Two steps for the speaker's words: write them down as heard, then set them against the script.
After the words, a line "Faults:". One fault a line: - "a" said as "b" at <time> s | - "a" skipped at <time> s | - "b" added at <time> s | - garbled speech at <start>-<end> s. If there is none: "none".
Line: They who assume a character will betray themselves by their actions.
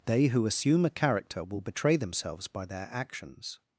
They who assume a character will betray themselves by their actions.
Faults:
none